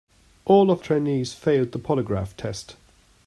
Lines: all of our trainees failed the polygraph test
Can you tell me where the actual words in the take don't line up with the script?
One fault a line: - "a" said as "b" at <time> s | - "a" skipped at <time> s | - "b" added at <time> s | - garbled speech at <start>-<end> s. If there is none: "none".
- "our" skipped at 0.8 s